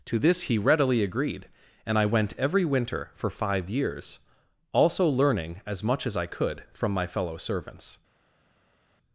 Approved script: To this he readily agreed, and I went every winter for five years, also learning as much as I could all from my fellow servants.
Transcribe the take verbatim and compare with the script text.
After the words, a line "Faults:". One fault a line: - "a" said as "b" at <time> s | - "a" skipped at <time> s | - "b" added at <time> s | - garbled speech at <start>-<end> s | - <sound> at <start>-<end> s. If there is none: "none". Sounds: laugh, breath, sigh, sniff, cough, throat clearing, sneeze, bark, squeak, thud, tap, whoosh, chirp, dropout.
To this he readily agreed, and I went every winter for five years, also learning as much as I could from my fellow servants.
Faults:
- "all" skipped at 6.6 s